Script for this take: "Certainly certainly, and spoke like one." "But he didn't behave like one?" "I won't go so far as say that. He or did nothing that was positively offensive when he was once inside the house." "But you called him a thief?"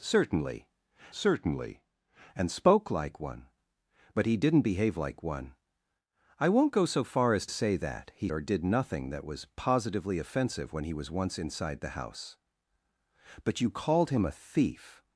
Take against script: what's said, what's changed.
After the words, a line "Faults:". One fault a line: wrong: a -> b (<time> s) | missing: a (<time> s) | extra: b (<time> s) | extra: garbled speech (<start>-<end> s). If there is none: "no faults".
"Certainly certainly, and spoke like one." "But he didn't behave like one?" "I won't go so far as say that. He or did nothing that was positively offensive when he was once inside the house." "But you called him a thief?"
Faults:
no faults